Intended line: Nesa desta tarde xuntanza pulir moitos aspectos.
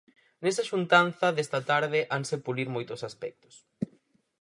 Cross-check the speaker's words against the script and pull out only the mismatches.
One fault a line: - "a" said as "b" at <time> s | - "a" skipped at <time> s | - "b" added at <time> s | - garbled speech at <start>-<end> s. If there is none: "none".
- "xuntanza" added at 0.7 s
- "xuntanza" said as "hanse" at 2.1 s